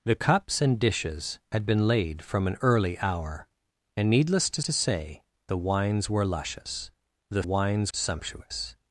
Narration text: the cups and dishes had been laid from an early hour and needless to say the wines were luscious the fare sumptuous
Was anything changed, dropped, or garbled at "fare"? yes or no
yes